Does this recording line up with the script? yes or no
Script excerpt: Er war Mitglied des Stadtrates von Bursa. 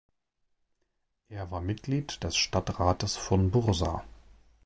yes